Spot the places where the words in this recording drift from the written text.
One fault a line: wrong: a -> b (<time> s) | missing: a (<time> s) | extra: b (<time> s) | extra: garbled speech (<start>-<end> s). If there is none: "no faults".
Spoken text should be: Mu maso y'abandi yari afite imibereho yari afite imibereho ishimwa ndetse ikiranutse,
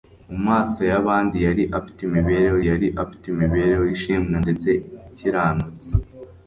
no faults